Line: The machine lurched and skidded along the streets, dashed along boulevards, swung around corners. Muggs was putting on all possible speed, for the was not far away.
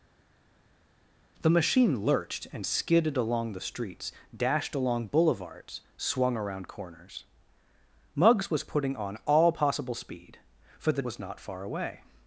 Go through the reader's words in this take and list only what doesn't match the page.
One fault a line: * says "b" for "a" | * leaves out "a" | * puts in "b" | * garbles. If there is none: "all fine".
all fine